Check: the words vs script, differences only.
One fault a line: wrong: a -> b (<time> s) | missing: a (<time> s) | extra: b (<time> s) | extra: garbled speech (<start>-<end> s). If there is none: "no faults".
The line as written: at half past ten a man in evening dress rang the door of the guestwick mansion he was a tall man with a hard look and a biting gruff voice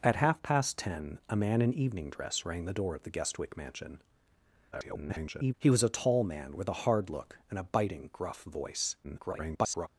extra: garbled speech (4.7-5.5 s)
extra: garbled speech (9.0-9.9 s)